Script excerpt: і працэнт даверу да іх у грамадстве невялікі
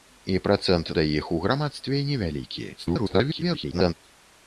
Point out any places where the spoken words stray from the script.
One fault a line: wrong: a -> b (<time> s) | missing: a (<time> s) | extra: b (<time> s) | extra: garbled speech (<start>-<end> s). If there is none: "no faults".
missing: даверу (0.9 s)
extra: garbled speech (2.8-3.9 s)